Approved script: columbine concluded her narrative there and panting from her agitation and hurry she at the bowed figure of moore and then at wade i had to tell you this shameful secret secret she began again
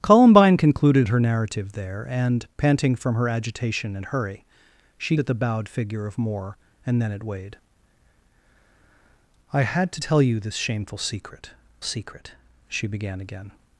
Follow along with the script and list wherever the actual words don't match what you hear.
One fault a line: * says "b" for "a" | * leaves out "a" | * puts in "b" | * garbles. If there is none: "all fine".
all fine